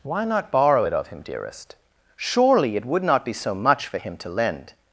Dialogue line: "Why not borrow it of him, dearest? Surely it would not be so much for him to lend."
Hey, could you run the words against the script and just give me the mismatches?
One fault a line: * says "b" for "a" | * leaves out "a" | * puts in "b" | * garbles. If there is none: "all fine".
all fine